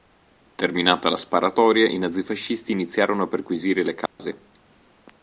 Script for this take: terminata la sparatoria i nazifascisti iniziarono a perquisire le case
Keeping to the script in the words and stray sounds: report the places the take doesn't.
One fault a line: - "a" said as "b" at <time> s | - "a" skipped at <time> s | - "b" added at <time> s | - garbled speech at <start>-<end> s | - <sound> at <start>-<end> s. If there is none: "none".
- dropout at 4.1-4.2 s